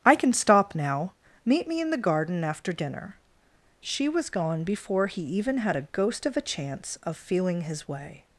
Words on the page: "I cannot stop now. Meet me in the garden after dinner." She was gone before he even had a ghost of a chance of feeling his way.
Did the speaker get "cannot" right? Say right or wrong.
wrong